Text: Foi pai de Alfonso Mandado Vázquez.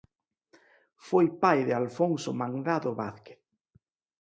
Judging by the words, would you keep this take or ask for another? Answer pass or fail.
pass